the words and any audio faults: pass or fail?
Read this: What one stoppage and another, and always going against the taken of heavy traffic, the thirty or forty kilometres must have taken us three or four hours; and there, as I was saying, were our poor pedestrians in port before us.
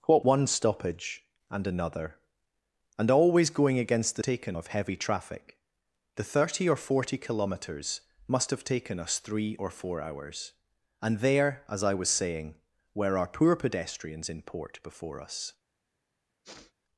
fail